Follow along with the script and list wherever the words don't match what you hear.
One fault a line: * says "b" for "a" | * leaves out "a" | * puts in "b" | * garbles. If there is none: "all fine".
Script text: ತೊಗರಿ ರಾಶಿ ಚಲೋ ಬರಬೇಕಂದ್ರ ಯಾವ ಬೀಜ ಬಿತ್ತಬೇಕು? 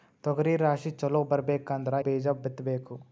* leaves out "ಯಾವ"